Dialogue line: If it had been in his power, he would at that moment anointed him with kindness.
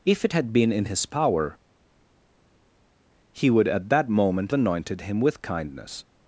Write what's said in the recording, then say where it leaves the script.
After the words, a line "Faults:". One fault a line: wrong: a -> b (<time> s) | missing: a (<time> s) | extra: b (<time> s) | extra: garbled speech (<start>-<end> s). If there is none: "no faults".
If it had been in his power, he would at that moment anointed him with kindness.
Faults:
no faults